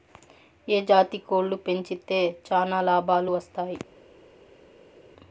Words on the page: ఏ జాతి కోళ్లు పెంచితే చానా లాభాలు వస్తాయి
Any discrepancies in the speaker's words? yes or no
no